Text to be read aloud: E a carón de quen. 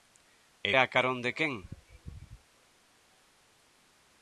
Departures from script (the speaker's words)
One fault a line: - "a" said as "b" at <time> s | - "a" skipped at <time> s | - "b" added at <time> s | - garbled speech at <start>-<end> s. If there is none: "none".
none